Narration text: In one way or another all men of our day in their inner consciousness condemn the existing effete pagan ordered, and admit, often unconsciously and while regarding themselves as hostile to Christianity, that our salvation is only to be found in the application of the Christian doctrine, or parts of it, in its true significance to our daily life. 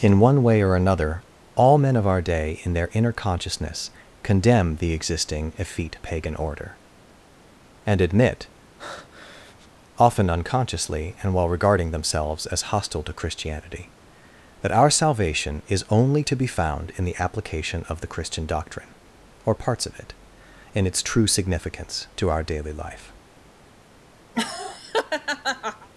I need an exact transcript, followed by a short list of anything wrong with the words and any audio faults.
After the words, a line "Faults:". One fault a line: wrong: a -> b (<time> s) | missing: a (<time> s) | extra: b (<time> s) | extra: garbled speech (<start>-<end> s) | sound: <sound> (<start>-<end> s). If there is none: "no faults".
In one way or another all men of our day in their inner consciousness condemn the existing effete pagan order, and admit, often unconsciously and while regarding themselves as hostile to Christianity, that our salvation is only to be found in the application of the Christian doctrine, or parts of it, in its true significance to our daily life.
Faults:
wrong: ordered -> order (6.4 s)
sound: breath (8.8-9.7 s)
sound: laugh (24.3-25.9 s)